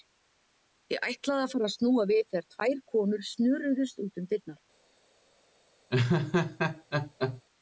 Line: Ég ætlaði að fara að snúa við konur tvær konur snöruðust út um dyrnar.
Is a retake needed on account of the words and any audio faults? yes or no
yes